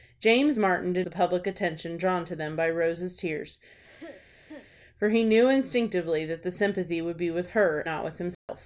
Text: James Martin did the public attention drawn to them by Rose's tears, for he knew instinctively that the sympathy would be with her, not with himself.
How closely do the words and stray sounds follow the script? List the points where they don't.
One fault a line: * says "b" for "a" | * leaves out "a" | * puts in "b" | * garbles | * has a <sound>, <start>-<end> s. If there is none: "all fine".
* has a cough, 3.8-4.7 s
* has a dropout, 8.3-8.5 s